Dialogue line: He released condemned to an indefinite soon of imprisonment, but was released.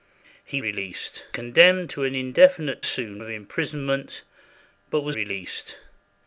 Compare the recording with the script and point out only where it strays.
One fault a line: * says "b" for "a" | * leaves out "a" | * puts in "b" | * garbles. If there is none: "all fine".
all fine